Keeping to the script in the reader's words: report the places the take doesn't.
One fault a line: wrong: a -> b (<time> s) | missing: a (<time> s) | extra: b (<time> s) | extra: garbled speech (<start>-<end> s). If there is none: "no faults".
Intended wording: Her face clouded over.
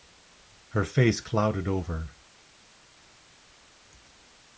no faults